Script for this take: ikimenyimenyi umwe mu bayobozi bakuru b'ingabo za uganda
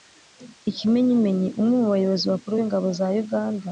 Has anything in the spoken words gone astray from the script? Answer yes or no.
no